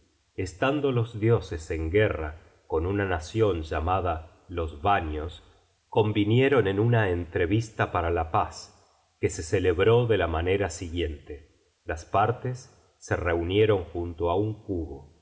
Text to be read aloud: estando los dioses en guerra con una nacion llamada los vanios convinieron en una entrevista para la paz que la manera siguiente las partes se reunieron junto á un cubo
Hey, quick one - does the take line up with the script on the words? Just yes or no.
no